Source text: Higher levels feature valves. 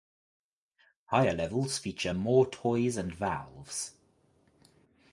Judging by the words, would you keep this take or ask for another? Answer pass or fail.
fail